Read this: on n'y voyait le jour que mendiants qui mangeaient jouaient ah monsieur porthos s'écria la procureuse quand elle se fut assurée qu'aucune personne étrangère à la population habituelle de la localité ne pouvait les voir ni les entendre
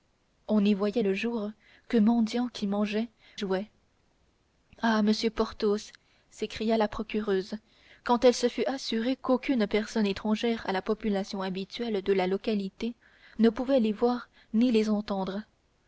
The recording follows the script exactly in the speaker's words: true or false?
true